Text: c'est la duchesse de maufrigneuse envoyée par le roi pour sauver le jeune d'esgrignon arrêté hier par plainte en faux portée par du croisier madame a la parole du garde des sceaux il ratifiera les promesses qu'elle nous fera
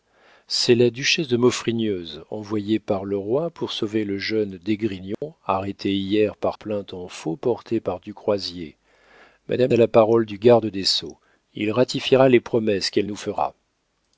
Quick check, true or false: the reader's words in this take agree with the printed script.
true